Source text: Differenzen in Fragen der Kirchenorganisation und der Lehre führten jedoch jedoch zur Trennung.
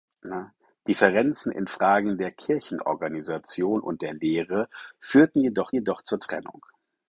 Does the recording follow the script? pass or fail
pass